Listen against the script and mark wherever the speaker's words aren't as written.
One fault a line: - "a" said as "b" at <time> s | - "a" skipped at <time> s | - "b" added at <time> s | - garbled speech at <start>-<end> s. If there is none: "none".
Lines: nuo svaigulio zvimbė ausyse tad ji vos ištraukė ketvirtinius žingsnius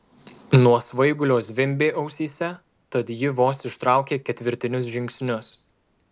none